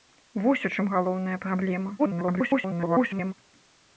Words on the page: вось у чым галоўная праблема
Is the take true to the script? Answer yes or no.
no